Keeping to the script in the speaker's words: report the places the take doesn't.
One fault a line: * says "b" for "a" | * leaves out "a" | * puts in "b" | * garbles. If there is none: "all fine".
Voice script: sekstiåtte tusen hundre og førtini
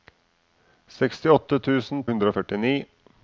all fine